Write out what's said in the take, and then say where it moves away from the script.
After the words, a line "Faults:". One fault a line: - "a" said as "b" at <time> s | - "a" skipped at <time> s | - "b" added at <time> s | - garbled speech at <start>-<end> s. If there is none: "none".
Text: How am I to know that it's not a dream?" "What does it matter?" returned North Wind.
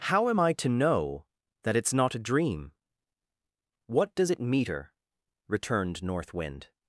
How am I to know that it's not a dream?" "What does it meter?" returned North Wind.
Faults:
- "matter" said as "meter" at 4.4 s